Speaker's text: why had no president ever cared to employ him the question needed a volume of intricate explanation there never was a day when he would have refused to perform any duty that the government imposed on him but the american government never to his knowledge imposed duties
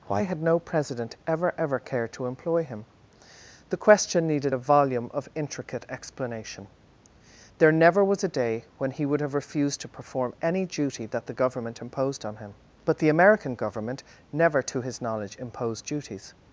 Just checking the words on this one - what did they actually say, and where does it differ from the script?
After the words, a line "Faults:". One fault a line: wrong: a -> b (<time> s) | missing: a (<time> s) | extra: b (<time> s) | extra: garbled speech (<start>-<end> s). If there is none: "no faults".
why had no president ever ever cared to employ him the question needed a volume of intricate explanation there never was a day when he would have refused to perform any duty that the government imposed on him but the american government never to his knowledge imposed duties
Faults:
extra: ever (1.6 s)